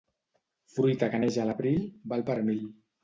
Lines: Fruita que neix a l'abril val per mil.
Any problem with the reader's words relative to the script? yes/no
no